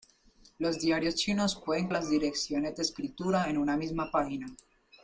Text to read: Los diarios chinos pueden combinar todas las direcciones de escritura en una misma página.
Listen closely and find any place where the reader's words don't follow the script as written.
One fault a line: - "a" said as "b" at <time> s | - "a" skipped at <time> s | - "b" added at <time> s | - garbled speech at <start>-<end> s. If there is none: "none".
- "combinar todas" skipped at 1.9 s